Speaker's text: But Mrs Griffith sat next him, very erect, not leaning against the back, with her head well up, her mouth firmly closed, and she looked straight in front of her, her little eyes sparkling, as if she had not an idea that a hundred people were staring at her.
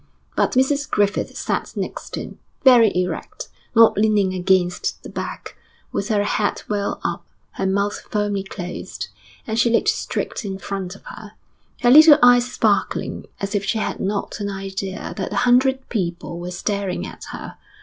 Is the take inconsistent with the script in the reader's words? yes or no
no